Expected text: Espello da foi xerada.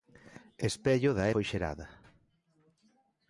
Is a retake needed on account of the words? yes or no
no